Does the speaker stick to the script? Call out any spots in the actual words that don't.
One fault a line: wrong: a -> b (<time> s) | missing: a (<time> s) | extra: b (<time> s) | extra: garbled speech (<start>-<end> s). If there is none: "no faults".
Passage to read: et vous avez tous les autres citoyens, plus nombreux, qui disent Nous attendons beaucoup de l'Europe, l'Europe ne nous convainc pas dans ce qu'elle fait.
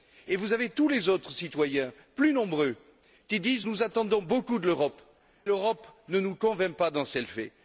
no faults